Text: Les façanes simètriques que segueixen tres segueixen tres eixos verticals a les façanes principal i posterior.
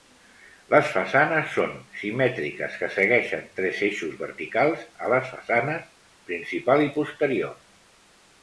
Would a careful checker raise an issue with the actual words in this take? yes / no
yes